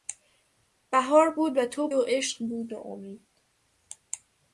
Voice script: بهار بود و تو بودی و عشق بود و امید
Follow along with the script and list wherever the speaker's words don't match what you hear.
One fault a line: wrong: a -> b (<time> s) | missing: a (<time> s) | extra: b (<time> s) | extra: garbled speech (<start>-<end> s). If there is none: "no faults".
missing: بودی (1.9 s)